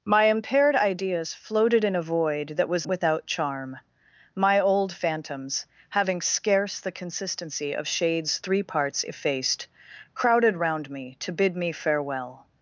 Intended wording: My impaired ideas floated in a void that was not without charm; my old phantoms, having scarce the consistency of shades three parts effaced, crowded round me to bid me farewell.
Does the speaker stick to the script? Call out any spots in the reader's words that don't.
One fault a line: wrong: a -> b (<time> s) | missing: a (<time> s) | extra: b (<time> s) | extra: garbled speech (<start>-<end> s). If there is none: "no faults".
missing: not (2.9 s)